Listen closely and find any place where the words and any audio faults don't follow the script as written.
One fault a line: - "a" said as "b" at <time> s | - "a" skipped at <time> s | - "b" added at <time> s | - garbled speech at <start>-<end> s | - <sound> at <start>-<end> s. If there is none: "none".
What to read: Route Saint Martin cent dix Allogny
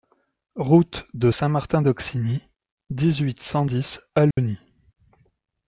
- "de" added at 1.1 s
- "d'Auxigny dix huit" added at 1.8 s
- dropout at 4.3-4.4 s